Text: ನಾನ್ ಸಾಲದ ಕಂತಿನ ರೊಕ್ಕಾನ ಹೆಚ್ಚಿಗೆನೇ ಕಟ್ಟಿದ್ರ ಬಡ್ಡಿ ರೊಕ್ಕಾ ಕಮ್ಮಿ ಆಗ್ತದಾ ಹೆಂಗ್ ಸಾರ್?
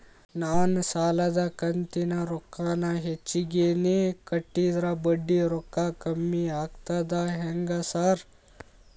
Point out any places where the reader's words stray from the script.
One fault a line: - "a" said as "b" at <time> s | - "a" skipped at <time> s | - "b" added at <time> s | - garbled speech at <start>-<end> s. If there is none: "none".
none